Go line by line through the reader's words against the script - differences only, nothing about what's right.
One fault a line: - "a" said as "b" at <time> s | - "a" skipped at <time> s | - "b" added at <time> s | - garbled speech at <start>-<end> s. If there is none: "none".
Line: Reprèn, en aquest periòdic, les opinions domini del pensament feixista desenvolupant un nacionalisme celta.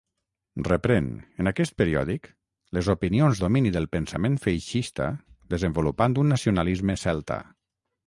none